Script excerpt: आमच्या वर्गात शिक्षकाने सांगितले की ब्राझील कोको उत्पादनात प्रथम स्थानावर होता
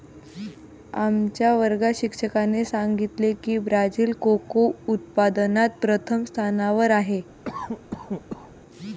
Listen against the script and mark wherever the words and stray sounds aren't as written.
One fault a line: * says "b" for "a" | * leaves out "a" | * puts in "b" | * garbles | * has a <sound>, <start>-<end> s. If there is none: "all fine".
* says "आहे" for "होता"
* has a cough, 7.4-8.5 s